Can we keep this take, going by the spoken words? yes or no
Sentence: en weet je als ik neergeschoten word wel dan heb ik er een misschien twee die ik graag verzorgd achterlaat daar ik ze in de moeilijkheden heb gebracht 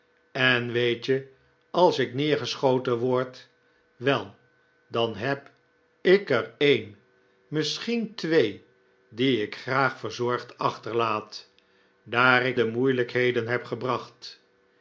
no